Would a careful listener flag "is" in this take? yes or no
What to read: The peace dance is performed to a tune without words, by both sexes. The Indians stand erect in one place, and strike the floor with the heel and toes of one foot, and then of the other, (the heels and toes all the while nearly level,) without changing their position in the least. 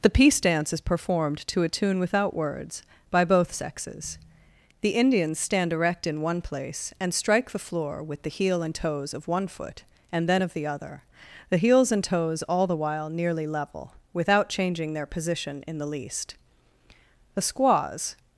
no